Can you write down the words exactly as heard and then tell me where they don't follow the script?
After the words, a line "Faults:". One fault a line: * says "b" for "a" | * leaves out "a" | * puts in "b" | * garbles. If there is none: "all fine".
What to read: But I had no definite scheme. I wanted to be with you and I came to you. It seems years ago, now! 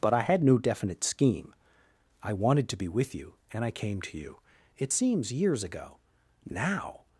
But I had no definite scheme. I wanted to be with you and I came to you. It seems years ago, now!
Faults:
all fine